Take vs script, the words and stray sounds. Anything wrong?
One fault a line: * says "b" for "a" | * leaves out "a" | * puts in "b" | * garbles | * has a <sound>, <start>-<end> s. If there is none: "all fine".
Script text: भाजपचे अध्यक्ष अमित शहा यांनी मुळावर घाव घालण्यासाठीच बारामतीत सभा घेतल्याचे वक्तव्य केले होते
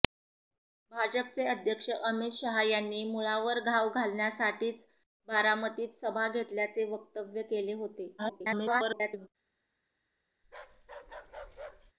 * garbles
* has a bark, 10.4-11.9 s